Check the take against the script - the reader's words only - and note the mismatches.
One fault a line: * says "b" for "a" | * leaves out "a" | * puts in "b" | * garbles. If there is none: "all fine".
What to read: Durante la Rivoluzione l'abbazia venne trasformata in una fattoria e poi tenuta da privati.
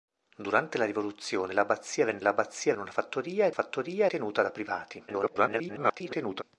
* says "l'abbazia" for "trasformata"
* says "fattoria" for "poi"
* garbles